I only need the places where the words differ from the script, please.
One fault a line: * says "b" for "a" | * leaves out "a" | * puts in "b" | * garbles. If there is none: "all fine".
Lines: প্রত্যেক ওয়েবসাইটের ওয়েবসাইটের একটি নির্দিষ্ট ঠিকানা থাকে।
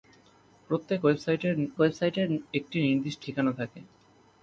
all fine